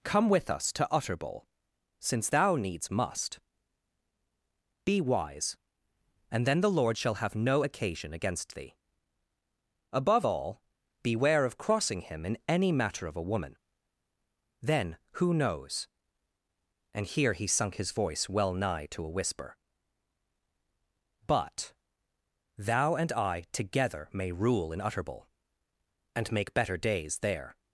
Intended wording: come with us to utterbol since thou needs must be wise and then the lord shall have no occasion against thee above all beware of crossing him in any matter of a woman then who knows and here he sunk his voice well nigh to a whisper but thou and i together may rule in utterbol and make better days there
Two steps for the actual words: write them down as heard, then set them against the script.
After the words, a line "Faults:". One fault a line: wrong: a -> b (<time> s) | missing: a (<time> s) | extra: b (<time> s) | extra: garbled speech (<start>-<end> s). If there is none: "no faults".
come with us to utterbol since thou needs must be wise and then the lord shall have no occasion against thee above all beware of crossing him in any matter of a woman then who knows and here he sunk his voice well nigh to a whisper but thou and i together may rule in utterbol and make better days there
Faults:
no faults